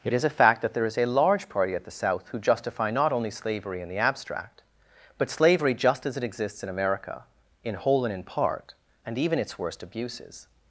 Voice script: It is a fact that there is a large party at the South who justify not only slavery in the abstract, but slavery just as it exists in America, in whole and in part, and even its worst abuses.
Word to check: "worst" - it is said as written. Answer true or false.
true